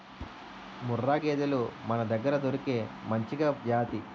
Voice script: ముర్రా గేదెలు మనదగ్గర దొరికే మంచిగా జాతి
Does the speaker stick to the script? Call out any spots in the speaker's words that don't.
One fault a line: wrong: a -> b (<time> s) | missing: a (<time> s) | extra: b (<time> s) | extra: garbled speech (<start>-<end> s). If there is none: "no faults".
no faults